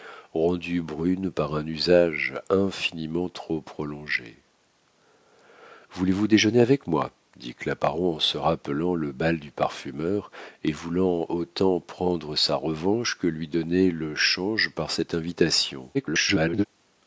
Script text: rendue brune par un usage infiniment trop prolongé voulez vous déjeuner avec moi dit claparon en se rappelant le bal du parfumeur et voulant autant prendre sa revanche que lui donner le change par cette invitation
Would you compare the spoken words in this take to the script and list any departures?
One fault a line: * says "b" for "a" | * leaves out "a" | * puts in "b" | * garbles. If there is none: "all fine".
* garbles